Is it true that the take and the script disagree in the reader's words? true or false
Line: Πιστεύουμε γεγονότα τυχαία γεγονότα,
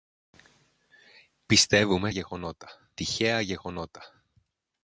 false